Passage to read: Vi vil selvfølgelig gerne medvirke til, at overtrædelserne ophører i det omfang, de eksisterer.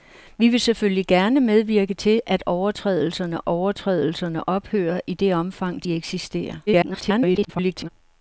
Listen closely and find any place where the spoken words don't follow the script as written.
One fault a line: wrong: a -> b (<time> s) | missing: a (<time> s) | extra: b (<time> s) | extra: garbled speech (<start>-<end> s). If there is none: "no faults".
extra: overtrædelserne (3.4 s)
extra: garbled speech (6.7-7.9 s)